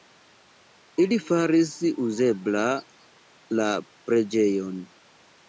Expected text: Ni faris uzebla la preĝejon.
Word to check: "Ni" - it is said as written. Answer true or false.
false